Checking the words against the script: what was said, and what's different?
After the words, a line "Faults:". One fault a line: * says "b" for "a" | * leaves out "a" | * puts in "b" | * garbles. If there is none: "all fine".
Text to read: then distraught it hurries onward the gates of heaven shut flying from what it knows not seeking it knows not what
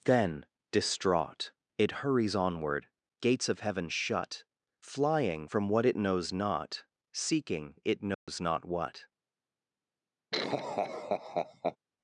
then distraught it hurries onward gates of heaven shut flying from what it knows not seeking it knows not what
Faults:
* leaves out "the"